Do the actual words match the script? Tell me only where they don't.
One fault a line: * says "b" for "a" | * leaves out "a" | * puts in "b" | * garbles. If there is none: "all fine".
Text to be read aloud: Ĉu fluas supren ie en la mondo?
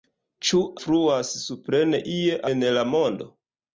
all fine